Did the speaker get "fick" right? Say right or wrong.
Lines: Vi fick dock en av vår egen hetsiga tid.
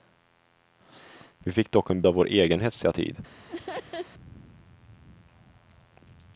right